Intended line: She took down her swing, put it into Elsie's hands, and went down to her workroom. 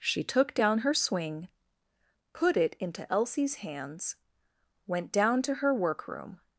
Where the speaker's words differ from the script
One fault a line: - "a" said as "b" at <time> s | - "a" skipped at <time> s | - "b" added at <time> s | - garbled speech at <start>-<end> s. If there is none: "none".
- "and" skipped at 4.2 s